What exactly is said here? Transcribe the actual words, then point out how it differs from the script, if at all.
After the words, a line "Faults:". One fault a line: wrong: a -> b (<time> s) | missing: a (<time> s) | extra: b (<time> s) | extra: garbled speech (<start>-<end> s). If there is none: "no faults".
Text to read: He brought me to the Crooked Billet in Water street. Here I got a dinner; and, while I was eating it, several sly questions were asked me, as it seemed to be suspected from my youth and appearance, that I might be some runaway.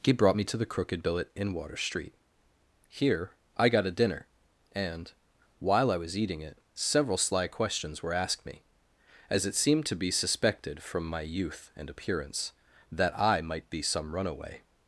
He brought me to the Crooked Billet in Water street. Here I got a dinner; and, while I was eating it, several sly questions were asked me, as it seemed to be suspected from my youth and appearance, that I might be some runaway.
Faults:
no faults